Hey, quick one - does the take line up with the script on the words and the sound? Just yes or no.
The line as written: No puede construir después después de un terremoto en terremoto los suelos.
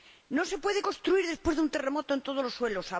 no